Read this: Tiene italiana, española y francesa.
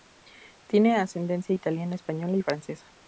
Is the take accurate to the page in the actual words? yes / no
no